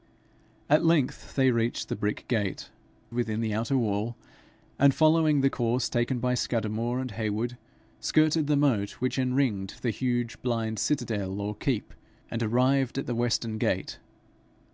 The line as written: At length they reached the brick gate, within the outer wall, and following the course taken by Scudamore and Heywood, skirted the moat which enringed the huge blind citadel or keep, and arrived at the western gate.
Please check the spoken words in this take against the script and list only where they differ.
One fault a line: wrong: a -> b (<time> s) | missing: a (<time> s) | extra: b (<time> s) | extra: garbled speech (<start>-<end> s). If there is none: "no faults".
no faults